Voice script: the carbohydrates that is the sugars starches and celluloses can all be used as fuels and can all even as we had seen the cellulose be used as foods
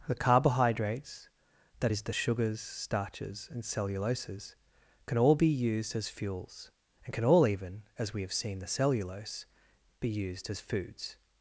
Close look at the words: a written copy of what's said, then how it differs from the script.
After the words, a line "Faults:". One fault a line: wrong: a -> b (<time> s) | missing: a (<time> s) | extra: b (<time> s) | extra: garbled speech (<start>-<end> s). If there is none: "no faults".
the carbohydrates that is the sugars starches and celluloses can all be used as fuels and can all even as we have seen the cellulose be used as foods
Faults:
wrong: had -> have (8.2 s)